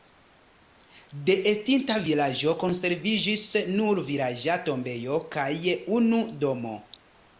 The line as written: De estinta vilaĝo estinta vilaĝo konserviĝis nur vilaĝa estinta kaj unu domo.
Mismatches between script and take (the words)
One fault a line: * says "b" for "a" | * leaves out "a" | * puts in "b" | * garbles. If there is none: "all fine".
* leaves out "estinta vilaĝo"
* says "tombejo" for "estinta"